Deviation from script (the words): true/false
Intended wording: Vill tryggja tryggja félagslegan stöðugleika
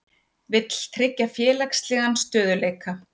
true